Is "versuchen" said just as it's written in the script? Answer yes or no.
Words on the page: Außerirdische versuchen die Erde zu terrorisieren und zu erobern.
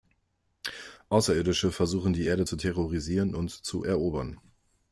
yes